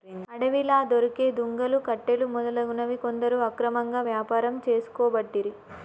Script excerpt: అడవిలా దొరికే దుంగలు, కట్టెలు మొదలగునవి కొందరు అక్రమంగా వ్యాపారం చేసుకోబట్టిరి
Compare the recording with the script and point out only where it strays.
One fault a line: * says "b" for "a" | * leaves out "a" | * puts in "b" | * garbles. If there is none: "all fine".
all fine